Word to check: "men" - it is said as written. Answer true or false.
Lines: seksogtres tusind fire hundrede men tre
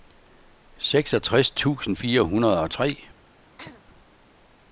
false